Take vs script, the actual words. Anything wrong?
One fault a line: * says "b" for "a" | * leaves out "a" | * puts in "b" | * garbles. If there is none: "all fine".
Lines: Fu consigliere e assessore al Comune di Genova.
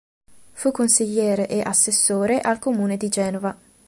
all fine